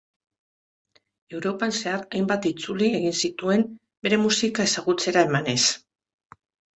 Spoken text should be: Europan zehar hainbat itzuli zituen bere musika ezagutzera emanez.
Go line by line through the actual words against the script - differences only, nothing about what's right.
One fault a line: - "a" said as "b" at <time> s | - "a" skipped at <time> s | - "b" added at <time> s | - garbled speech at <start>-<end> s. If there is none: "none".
- "egin" added at 3.0 s